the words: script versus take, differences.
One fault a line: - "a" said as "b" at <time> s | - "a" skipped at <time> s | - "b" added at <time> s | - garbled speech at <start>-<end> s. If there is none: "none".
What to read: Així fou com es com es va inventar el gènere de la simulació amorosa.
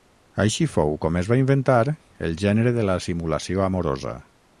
- "com es" skipped at 1.3 s